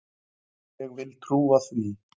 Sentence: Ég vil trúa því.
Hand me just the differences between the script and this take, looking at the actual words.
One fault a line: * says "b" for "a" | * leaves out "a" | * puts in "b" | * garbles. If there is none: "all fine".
all fine